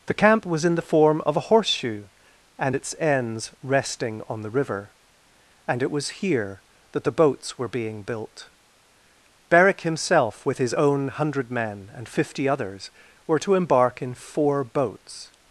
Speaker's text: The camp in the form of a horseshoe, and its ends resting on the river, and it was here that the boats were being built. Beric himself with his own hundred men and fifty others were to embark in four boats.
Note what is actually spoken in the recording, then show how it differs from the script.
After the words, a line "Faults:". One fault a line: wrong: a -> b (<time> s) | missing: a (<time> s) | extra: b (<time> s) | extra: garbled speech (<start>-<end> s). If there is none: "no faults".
The camp was in the form of a horseshoe, and its ends resting on the river, and it was here that the boats were being built. Beric himself with his own hundred men and fifty others were to embark in four boats.
Faults:
extra: was (0.5 s)